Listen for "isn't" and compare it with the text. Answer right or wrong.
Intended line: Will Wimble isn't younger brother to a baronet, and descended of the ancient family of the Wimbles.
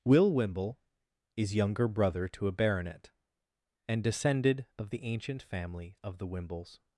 wrong